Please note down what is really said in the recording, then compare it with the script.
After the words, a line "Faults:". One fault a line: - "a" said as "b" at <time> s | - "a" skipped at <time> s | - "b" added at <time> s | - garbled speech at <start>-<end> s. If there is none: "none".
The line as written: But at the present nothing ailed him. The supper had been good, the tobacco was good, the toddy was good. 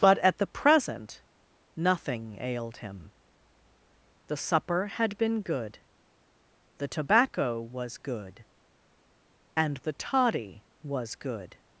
But at the present nothing ailed him. The supper had been good, the tobacco was good, and the toddy was good.
Faults:
- "and" added at 9.6 s